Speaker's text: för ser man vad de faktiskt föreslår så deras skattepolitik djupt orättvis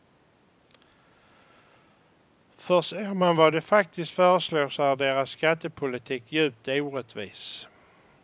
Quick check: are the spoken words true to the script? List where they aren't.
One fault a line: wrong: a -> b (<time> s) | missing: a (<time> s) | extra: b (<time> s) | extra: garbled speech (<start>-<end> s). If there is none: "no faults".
extra: är (4.8 s)